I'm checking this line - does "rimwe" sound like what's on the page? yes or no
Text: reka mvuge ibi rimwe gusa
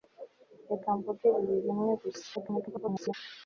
yes